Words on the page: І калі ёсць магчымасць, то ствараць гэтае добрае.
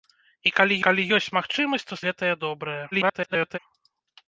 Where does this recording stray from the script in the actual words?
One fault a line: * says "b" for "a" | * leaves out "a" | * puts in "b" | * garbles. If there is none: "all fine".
* puts in "калі"
* leaves out "ствараць"
* garbles